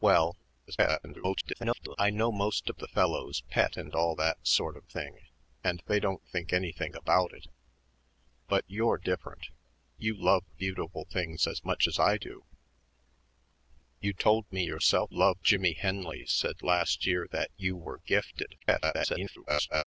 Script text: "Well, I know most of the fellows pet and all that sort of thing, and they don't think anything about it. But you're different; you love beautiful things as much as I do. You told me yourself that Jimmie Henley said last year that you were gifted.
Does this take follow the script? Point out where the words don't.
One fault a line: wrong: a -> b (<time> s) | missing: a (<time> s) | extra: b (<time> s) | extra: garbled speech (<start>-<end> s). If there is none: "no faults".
extra: garbled speech (0.7-2.0 s)
wrong: that -> love (15.1 s)
extra: garbled speech (18.6-19.8 s)